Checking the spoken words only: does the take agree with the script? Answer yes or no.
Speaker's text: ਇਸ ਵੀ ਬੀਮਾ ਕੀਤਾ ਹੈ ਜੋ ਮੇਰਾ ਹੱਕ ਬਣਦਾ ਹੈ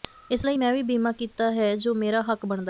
no